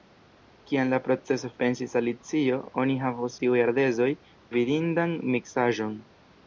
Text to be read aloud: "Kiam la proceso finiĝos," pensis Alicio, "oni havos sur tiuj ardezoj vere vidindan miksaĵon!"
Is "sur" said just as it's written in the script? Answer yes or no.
no